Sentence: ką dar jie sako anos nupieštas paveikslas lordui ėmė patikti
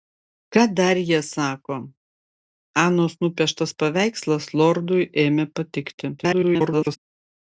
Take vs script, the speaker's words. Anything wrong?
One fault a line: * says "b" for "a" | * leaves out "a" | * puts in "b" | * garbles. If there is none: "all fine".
* garbles